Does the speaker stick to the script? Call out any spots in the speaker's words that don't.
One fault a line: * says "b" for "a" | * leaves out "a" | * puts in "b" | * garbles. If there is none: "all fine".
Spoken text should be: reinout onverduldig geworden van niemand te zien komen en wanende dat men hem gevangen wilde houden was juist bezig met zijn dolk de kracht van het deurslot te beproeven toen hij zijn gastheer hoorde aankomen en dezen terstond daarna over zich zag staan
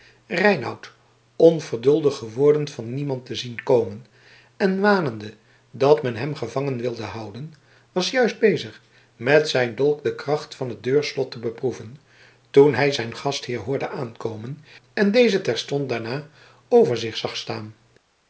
all fine